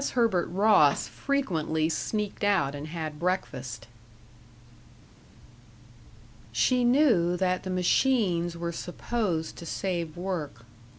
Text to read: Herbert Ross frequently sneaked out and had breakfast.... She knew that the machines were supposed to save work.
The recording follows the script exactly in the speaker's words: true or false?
true